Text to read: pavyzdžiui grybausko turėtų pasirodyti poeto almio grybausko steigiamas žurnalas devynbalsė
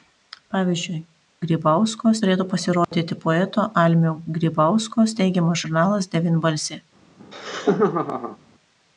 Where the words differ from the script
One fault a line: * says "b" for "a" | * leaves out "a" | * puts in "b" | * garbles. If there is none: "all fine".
all fine